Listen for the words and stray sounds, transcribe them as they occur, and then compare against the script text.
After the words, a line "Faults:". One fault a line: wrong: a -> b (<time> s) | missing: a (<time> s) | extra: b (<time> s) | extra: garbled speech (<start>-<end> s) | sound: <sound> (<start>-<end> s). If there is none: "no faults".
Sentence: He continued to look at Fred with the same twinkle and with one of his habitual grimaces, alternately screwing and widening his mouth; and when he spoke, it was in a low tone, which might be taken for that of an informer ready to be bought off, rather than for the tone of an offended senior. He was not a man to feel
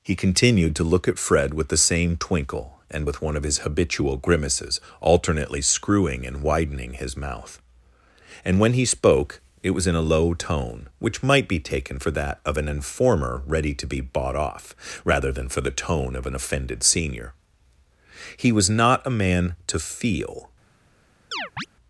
He continued to look at Fred with the same twinkle and with one of his habitual grimaces, alternately screwing and widening his mouth; and when he spoke, it was in a low tone, which might be taken for that of an informer ready to be bought off, rather than for the tone of an offended senior. He was not a man to feel
Faults:
sound: chirp (21.3-21.7 s)